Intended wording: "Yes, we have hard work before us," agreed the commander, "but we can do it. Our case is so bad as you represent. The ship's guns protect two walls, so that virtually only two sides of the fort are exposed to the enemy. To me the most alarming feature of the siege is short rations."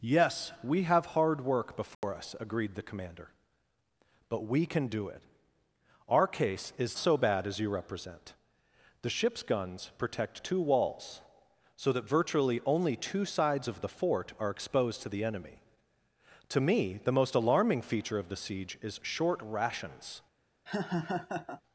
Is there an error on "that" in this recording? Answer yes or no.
no